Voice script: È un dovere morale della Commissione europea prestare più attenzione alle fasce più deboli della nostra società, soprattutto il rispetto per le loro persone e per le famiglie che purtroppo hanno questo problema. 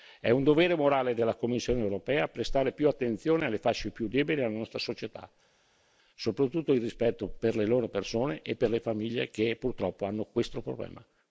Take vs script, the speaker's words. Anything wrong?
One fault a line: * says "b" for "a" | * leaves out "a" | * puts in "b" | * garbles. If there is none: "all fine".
all fine